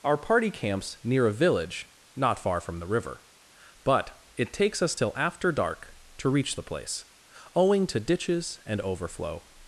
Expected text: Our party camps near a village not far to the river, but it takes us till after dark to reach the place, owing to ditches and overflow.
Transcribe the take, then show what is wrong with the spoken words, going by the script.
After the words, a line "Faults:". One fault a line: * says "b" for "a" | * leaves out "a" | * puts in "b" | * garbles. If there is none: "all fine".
Our party camps near a village not far from the river, but it takes us till after dark to reach the place, owing to ditches and overflow.
Faults:
* says "from" for "to"